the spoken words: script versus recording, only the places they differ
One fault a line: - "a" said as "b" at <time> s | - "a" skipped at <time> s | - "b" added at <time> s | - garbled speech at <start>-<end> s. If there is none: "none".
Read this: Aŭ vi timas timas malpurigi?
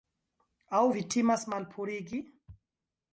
- "timas" skipped at 1.4 s